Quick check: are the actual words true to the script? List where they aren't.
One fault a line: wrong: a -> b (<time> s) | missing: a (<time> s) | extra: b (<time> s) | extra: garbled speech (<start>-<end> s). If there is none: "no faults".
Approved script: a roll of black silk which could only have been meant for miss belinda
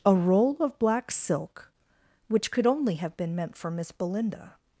no faults